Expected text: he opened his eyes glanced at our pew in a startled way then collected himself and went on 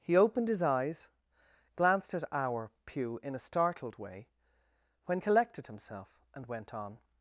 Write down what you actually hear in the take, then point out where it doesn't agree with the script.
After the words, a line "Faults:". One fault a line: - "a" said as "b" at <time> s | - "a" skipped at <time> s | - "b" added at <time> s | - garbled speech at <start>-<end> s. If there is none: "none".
he opened his eyes glanced at our pew in a startled way when collected himself and went on
Faults:
- "then" said as "when" at 5.0 s